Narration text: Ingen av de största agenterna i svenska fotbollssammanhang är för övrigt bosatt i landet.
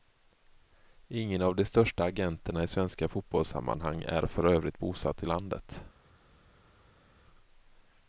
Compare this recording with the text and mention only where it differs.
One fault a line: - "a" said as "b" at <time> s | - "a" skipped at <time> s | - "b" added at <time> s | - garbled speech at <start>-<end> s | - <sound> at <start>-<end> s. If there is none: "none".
none